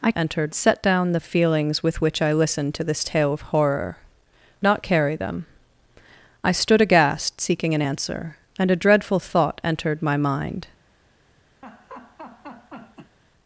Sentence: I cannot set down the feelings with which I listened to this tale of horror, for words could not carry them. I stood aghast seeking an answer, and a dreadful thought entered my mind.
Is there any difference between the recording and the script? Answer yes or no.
yes